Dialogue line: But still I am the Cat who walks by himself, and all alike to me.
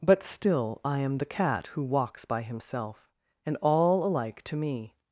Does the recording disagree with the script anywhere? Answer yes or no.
no